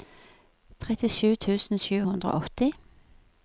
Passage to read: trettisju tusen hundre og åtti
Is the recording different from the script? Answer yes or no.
yes